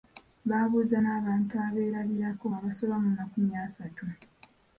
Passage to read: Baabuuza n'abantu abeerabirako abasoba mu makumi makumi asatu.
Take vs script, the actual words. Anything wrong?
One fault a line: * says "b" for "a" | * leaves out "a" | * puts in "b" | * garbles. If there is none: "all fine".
* leaves out "makumi"